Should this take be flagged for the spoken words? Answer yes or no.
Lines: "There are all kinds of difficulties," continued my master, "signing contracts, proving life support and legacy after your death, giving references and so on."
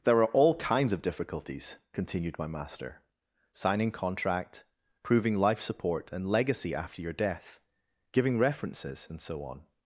yes